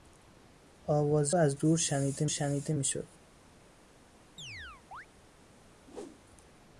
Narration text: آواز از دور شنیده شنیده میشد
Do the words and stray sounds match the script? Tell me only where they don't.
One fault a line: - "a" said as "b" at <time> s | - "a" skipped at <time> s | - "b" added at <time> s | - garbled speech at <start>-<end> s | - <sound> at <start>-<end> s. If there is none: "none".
- chirp at 4.4-5.1 s
- whoosh at 5.9-6.2 s